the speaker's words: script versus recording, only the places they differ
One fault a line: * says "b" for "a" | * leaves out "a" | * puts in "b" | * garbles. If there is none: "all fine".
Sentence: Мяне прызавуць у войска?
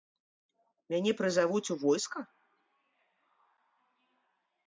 all fine